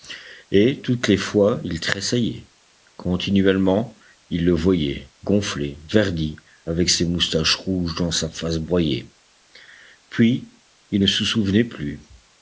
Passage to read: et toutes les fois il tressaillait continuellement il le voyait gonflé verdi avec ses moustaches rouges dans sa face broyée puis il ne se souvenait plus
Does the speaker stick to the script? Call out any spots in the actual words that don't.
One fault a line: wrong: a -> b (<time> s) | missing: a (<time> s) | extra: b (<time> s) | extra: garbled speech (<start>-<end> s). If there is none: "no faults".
no faults